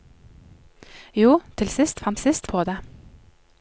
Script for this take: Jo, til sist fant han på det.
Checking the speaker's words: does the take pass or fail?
fail